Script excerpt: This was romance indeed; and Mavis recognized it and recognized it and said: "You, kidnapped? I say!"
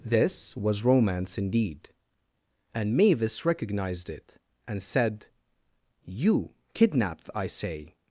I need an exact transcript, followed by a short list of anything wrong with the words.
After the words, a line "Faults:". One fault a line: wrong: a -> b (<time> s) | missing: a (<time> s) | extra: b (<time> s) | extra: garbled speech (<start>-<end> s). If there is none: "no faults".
This was romance indeed; and Mavis recognized it and said: "You, kidnapped? I say!"
Faults:
missing: recognized it and (4.8 s)